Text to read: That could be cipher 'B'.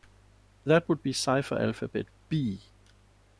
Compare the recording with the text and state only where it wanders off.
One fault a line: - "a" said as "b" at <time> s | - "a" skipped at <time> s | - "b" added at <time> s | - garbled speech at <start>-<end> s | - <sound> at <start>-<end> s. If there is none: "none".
- "could" said as "would" at 0.9 s
- "alphabet" added at 1.6 s